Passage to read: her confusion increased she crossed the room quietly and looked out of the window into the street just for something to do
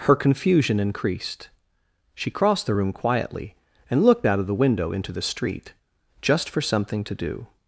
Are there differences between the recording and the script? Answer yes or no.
no